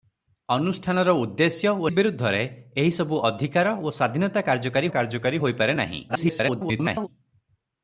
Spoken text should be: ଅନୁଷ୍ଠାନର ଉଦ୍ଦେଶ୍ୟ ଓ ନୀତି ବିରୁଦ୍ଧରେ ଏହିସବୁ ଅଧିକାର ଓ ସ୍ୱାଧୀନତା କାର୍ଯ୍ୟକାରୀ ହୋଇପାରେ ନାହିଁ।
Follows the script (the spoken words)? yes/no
no